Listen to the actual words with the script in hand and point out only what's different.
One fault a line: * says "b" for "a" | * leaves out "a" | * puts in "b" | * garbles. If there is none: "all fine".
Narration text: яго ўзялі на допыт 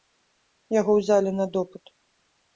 all fine